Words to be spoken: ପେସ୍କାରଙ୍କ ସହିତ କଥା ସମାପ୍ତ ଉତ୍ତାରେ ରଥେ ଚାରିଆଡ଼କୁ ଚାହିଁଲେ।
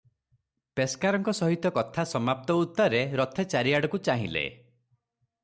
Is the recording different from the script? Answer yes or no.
no